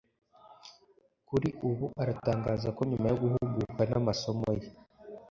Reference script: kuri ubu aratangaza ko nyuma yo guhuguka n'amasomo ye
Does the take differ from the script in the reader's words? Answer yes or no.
no